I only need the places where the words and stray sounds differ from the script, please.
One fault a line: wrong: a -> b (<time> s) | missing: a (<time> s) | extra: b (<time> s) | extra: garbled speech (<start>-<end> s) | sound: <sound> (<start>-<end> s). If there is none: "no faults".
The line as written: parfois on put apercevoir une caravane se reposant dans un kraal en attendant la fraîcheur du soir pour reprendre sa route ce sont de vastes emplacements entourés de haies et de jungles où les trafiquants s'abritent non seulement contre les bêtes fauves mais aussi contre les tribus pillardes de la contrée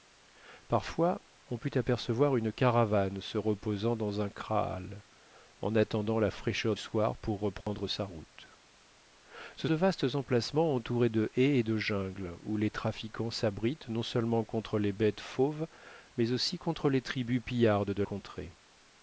missing: du (6.8 s)
sound: dropout (7.6-7.7 s)
missing: sont (9.7 s)
missing: la (18.0 s)